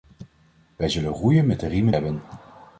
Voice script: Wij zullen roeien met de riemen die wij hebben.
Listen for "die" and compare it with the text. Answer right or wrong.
wrong